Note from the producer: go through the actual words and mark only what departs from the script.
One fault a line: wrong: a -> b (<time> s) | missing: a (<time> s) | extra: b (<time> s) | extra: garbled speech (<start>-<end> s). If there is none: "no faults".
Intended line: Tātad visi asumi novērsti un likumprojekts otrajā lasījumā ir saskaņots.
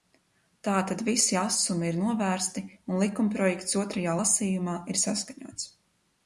extra: ir (1.9 s)